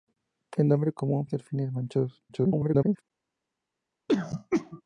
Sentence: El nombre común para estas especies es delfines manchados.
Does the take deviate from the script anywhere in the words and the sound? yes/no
yes